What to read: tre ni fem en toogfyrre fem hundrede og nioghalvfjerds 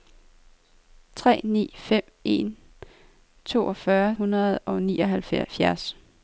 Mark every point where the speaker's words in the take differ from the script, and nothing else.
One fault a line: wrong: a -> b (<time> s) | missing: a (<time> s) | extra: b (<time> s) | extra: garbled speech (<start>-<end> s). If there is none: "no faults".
missing: fem (4.2 s)